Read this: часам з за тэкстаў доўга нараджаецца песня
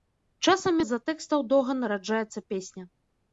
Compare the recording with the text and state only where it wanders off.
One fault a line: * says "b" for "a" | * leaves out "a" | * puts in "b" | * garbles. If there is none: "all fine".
all fine